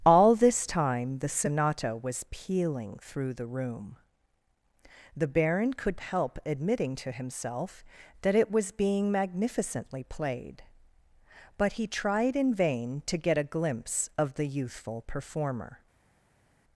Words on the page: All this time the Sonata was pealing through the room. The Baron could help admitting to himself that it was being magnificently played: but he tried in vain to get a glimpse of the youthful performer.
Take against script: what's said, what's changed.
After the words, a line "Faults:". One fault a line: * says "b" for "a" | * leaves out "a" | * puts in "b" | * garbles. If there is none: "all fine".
All this time the Sonata was pealing through the room. The Baron could help admitting to himself that it was being magnificently played: but he tried in vain to get a glimpse of the youthful performer.
Faults:
all fine